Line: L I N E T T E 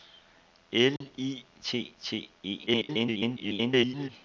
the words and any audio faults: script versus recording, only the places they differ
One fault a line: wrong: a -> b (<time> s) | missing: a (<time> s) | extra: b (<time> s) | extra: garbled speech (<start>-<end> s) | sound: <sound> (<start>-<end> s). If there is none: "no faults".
sound: dropout (1.0-1.0 s)
missing: N E (1.4 s)
extra: garbled speech (2.7-4.1 s)